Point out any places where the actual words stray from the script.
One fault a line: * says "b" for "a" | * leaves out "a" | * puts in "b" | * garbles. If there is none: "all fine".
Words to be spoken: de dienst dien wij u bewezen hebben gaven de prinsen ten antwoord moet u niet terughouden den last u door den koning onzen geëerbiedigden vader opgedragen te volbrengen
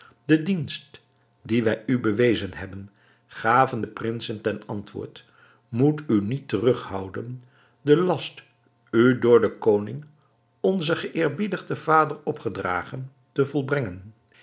all fine